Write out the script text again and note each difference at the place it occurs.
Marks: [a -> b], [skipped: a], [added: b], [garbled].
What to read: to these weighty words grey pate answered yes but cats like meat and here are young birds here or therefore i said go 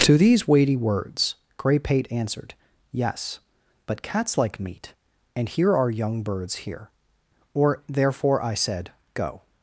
to these weighty words grey pate answered yes but cats like meat and here are young birds here or therefore i said go